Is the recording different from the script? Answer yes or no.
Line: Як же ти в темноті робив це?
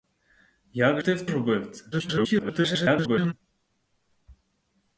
yes